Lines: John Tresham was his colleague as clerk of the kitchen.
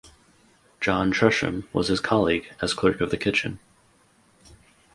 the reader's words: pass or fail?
pass